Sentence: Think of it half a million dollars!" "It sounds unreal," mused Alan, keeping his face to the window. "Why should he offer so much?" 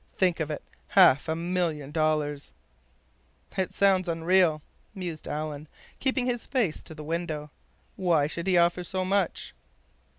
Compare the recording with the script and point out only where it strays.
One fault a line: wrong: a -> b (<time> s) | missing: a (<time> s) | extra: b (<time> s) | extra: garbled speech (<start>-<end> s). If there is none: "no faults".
no faults